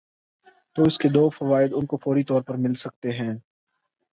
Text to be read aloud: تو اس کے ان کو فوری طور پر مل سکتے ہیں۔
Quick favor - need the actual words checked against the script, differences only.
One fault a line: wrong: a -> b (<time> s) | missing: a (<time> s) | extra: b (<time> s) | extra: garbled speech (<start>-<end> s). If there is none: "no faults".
extra: دو فوائد (1.1 s)